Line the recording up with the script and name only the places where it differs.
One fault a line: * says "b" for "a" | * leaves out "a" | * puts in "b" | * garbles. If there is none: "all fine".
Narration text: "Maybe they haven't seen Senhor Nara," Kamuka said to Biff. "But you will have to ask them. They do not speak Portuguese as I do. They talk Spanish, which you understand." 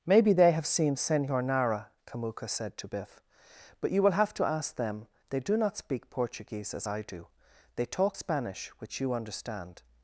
* says "have" for "haven't"